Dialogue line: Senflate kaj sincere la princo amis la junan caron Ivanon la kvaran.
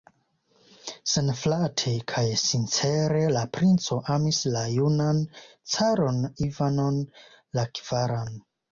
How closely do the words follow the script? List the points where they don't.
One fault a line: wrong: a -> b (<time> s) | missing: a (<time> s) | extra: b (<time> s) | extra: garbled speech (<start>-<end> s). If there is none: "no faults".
no faults